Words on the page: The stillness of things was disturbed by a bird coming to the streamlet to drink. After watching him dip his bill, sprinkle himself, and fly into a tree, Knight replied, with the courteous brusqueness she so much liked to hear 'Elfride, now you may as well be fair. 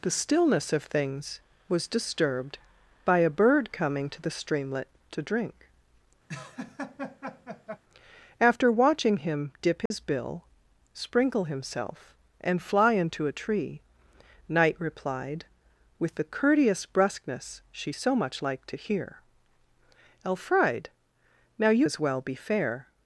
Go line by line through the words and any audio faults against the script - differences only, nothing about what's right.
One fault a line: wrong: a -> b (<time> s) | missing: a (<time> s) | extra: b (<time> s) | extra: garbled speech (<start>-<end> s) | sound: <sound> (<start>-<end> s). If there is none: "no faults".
sound: laugh (6.3-7.8 s)
sound: dropout (9.9-9.9 s)
missing: may (21.9 s)